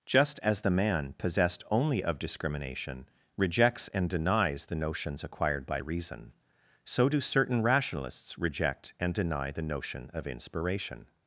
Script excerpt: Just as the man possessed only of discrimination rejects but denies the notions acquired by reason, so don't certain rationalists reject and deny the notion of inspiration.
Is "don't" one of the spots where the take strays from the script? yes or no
yes